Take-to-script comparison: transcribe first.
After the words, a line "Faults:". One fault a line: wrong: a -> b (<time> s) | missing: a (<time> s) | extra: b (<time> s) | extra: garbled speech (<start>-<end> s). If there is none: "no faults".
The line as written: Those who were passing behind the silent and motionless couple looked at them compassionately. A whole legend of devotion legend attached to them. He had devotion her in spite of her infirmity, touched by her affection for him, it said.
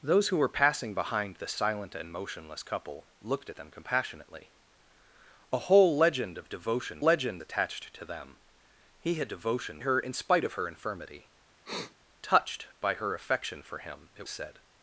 Those who were passing behind the silent and motionless couple looked at them compassionately. A whole legend of devotion legend attached to them. He had devotion her in spite of her infirmity, touched by her affection for him, it said.
Faults:
no faults